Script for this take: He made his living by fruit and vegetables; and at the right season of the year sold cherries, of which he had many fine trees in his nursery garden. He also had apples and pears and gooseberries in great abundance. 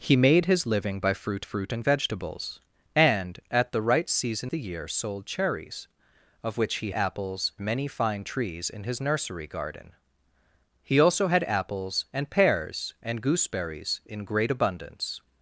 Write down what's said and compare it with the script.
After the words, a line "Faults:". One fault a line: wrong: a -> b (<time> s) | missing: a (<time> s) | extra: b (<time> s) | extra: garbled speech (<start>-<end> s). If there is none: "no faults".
He made his living by fruit fruit and vegetables; and at the right season the year sold cherries, of which he apples many fine trees in his nursery garden. He also had apples and pears and gooseberries in great abundance.
Faults:
extra: fruit (1.4 s)
missing: of (4.5 s)
wrong: had -> apples (6.9 s)